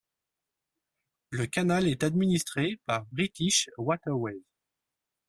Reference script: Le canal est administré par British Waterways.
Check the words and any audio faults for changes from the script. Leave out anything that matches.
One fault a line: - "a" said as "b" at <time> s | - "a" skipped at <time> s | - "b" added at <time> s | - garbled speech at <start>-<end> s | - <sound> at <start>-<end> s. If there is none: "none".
none